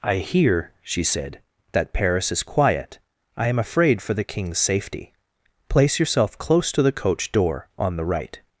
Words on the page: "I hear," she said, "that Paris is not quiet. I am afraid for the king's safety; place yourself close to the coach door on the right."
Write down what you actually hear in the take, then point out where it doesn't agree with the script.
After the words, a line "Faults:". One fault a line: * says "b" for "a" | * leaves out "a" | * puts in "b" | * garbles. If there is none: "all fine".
"I hear," she said, "that Paris is quiet. I am afraid for the king's safety; place yourself close to the coach door on the right."
Faults:
* leaves out "not"